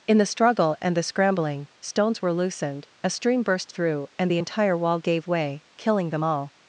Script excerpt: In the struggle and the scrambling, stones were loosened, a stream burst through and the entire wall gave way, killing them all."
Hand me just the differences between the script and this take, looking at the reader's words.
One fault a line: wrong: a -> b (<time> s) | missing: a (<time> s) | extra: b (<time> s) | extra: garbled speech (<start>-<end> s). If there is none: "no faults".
no faults